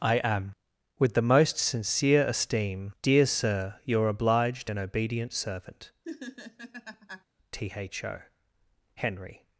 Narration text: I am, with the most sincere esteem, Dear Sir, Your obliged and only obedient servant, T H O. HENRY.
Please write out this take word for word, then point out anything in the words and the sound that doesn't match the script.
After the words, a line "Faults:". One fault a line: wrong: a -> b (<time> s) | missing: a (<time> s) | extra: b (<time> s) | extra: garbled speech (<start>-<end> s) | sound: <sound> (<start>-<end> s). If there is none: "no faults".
I am, with the most sincere esteem, Dear Sir, Your obliged and obedient servant, T H O. HENRY.
Faults:
missing: only (4.8 s)
sound: laugh (6.0-7.2 s)